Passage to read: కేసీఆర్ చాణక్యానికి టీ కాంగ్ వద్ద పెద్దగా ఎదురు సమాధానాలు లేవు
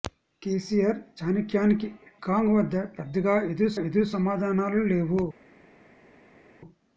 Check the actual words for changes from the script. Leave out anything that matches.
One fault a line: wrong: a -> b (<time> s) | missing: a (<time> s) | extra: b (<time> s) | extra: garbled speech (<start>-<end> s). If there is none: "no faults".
missing: టీ (1.9 s)
extra: ఎదురు (3.9 s)